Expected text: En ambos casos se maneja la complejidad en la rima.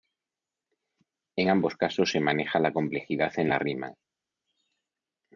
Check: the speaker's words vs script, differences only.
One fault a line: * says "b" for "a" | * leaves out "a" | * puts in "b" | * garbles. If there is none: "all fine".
all fine